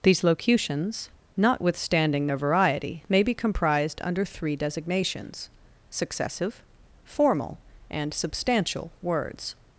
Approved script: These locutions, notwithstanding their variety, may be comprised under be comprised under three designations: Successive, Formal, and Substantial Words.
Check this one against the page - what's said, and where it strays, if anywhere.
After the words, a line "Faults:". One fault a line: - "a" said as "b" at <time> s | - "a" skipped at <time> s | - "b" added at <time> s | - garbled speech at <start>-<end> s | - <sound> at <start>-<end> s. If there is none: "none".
These locutions, notwithstanding their variety, may be comprised under three designations: Successive, Formal, and Substantial Words.
Faults:
- "be comprised under" skipped at 4.2 s